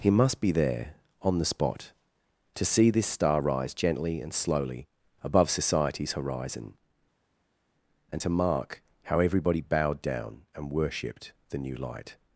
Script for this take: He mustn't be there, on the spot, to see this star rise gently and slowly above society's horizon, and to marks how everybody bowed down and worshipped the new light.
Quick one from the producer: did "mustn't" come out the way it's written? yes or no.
no